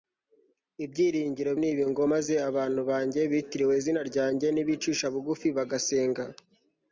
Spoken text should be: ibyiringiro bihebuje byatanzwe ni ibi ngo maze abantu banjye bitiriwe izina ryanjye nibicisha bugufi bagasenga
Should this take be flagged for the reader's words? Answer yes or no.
yes